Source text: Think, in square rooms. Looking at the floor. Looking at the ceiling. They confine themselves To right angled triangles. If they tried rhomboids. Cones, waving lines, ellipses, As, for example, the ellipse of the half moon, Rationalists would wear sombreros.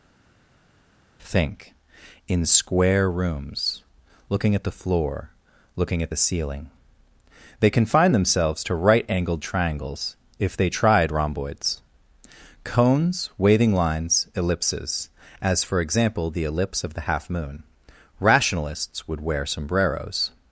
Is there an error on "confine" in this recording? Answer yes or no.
no